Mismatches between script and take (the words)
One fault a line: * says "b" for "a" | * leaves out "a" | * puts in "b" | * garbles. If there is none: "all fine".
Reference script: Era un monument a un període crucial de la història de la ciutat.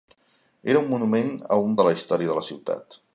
* leaves out "període crucial"